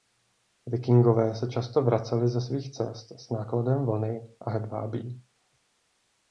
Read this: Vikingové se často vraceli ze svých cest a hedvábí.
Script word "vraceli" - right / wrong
right